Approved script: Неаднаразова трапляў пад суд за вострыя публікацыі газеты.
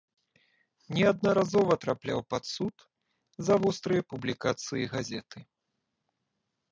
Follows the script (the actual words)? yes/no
yes